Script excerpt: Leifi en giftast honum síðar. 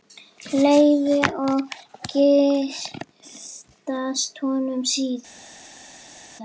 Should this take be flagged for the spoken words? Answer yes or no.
yes